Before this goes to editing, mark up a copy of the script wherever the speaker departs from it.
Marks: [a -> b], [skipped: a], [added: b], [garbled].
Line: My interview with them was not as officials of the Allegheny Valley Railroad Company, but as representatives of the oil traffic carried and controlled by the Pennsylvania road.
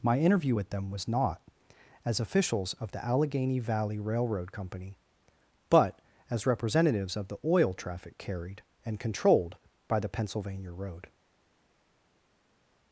My interview with them was not as officials of the Allegheny Valley Railroad Company, but as representatives of the oil traffic carried and controlled by the Pennsylvania road.